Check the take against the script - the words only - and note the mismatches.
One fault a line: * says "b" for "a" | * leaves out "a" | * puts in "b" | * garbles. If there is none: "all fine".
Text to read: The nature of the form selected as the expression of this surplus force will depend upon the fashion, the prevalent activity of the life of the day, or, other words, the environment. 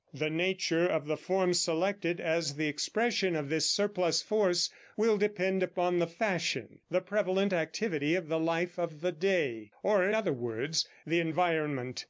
all fine